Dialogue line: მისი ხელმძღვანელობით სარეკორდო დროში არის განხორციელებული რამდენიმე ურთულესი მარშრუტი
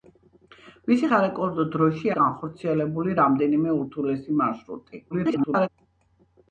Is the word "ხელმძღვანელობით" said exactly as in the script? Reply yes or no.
no